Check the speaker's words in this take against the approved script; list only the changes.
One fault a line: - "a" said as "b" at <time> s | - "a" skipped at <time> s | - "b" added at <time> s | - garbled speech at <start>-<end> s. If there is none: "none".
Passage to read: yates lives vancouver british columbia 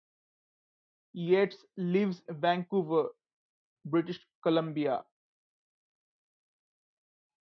none